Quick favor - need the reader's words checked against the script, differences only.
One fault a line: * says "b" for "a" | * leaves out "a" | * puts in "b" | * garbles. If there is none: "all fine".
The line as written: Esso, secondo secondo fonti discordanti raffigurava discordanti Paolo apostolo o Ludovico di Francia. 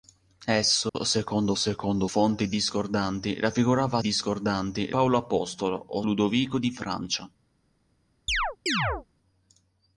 all fine